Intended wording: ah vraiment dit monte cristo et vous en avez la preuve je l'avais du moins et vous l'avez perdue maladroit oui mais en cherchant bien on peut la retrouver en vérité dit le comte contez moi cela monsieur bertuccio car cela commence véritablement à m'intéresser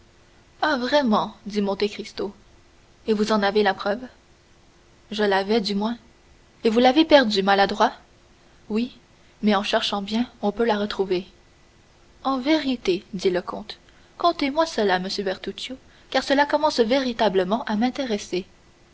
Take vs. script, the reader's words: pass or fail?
pass